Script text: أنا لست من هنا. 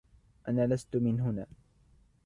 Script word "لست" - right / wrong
right